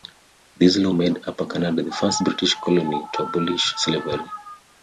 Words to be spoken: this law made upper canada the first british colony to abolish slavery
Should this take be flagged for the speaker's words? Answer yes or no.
no